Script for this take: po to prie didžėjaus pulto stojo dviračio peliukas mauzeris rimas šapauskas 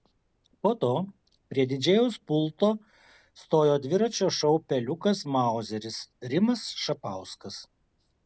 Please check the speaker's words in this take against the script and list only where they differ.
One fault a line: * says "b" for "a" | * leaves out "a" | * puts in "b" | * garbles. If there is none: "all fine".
* puts in "šou"